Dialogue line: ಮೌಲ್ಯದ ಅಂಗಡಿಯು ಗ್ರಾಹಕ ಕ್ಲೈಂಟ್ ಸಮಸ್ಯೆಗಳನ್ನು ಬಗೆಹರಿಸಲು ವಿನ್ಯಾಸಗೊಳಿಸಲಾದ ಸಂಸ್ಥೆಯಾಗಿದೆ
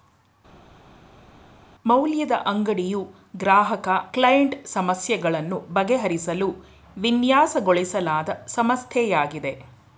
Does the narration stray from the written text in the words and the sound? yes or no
no